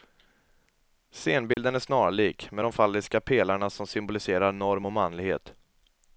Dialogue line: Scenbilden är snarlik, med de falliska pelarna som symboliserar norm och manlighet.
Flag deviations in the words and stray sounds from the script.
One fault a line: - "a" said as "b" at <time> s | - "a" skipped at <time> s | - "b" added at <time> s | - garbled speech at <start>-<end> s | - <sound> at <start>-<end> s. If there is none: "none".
- dropout at 1.5-1.6 s